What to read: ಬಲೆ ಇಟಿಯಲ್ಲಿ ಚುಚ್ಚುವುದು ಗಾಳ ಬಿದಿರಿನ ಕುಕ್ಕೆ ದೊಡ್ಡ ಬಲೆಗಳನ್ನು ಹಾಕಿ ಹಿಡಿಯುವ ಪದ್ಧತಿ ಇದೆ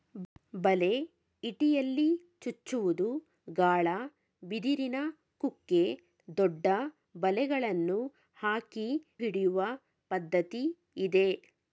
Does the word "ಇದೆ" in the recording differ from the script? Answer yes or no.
no